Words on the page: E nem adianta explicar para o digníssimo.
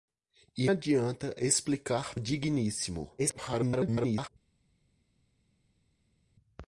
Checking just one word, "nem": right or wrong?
wrong